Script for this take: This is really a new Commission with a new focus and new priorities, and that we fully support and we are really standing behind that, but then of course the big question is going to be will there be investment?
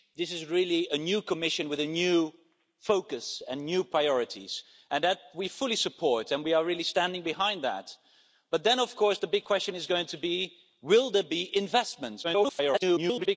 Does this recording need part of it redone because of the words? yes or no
yes